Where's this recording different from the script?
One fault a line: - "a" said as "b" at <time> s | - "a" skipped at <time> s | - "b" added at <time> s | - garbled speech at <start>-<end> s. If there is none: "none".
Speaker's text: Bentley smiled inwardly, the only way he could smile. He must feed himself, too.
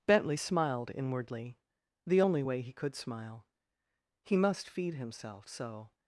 - "too" said as "so" at 5.5 s